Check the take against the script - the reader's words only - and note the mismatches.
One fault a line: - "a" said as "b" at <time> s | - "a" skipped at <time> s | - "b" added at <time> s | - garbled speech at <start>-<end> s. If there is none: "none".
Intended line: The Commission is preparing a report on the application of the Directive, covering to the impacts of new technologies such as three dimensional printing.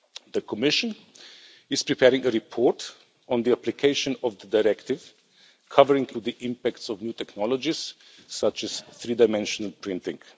none